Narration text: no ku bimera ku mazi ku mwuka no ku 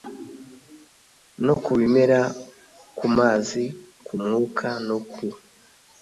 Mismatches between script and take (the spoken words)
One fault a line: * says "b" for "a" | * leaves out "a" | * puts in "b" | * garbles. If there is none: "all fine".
all fine